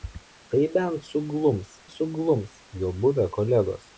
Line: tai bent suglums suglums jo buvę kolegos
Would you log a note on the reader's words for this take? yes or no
no